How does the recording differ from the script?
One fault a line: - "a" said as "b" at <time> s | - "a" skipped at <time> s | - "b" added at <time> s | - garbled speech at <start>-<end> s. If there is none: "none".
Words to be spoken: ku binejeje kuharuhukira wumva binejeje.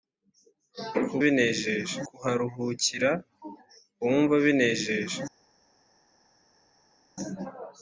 none